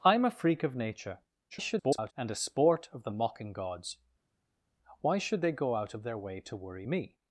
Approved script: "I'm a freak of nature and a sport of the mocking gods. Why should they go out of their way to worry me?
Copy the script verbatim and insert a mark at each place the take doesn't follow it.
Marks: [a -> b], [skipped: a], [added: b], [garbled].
"I'm a freak of nature [garbled] and a sport of the mocking gods. Why should they go out of their way to worry me?